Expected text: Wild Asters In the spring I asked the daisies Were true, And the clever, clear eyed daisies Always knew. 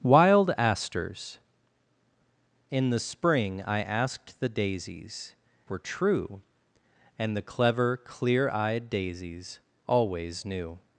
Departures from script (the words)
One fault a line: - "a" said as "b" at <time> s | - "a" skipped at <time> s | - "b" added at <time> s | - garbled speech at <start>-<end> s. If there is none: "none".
none